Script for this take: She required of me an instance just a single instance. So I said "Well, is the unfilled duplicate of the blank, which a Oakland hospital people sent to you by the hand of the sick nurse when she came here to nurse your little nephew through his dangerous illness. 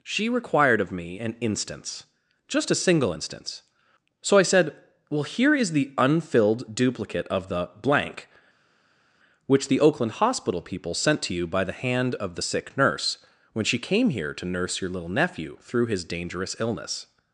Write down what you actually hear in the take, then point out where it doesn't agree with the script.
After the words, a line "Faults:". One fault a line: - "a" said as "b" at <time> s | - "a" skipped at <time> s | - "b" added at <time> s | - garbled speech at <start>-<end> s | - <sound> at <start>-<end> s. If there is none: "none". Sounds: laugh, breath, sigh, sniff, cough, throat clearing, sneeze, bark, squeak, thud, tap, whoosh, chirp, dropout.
She required of me an instance just a single instance. So I said "Well, here is the unfilled duplicate of the blank, which the Oakland hospital people sent to you by the hand of the sick nurse when she came here to nurse your little nephew through his dangerous illness.
Faults:
- "here" added at 5.2 s
- "a" said as "the" at 9.7 s